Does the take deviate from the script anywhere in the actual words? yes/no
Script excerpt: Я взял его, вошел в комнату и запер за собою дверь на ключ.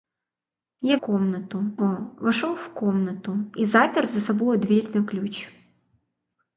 yes